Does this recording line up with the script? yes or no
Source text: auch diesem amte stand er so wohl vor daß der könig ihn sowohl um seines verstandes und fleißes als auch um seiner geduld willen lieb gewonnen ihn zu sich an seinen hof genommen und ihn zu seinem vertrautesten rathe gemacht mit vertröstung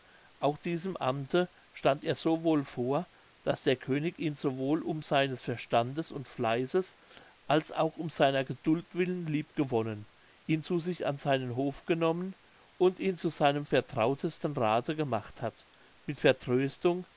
no